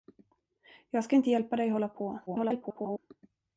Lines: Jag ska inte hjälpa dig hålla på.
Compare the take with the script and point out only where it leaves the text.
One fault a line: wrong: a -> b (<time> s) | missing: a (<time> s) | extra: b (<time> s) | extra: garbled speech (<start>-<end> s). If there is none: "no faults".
extra: garbled speech (2.3-3.0 s)